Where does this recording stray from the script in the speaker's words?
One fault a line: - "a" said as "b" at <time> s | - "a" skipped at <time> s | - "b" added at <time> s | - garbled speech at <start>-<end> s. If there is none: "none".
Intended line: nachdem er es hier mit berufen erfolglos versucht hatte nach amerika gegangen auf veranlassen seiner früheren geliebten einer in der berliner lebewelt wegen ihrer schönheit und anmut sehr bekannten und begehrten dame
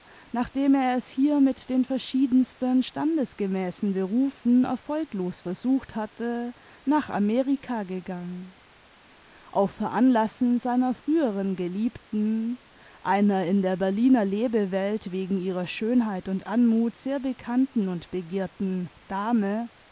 - "den verschiedensten standesgemäßen" added at 1.7 s